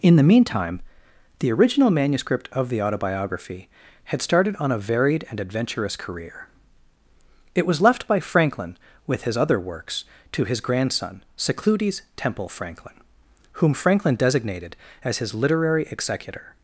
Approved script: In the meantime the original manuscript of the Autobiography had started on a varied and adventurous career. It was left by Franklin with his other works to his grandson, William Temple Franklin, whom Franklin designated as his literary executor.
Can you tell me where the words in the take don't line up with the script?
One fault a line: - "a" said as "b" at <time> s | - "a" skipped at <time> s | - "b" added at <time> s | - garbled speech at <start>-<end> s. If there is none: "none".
- "William" said as "Secludes" at 11.4 s